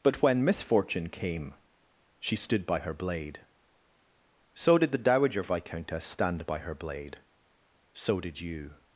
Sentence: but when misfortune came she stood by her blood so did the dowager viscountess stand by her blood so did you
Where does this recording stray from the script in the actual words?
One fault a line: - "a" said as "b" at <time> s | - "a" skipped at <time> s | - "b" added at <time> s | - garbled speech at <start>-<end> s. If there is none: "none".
- "blood" said as "blade" at 2.9 s
- "blood" said as "blade" at 6.8 s